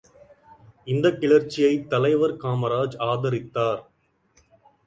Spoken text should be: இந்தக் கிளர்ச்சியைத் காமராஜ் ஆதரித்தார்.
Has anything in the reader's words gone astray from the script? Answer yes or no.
yes